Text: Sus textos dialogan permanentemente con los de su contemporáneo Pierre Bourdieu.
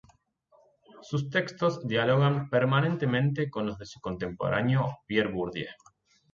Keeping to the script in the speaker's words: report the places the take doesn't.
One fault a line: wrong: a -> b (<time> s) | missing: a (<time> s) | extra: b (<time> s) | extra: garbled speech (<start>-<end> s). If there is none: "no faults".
no faults